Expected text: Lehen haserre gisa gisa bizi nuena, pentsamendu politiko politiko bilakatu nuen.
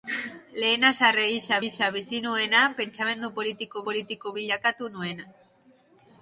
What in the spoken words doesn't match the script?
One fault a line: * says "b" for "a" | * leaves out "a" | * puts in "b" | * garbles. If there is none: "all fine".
all fine